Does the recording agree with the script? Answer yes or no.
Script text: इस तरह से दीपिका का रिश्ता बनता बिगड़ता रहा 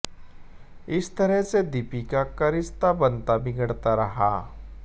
yes